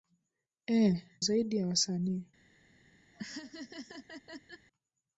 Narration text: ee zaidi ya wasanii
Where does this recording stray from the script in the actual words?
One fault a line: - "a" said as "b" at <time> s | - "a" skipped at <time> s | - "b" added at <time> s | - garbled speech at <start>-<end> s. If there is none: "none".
none